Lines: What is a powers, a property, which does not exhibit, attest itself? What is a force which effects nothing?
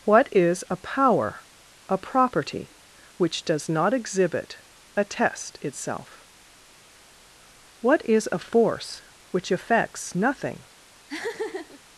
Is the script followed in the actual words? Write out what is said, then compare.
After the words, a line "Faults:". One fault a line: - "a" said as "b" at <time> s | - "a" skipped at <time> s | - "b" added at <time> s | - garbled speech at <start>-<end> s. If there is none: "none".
What is a power, a property, which does not exhibit, attest itself? What is a force which effects nothing?
Faults:
- "powers" said as "power" at 0.8 s